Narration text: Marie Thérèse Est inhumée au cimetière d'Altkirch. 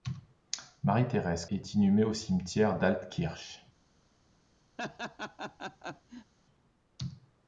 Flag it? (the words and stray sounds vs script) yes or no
yes